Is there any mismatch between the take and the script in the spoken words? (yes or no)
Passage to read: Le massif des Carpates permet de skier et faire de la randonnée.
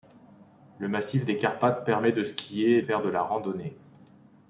no